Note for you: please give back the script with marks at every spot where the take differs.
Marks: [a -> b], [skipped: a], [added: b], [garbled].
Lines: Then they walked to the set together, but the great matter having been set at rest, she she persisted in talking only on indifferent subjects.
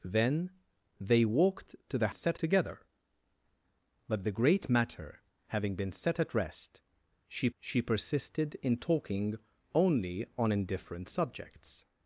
Then they walked to the set together, but the great matter having been set at rest, she she persisted in talking only on indifferent subjects.